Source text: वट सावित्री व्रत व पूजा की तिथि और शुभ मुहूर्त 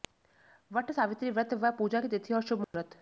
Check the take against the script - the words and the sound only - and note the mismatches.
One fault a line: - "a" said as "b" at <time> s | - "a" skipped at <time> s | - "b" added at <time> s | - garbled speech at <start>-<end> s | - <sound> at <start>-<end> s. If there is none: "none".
- dropout at 2.6-2.7 s